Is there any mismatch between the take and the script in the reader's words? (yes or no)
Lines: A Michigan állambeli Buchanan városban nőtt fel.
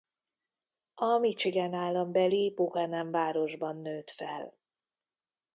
no